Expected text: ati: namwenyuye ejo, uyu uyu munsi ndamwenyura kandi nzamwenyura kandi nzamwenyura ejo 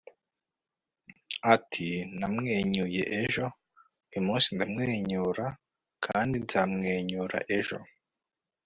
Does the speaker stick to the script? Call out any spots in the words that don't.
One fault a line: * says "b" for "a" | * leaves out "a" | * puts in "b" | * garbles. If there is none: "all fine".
* leaves out "uyu"
* leaves out "kandi nzamwenyura"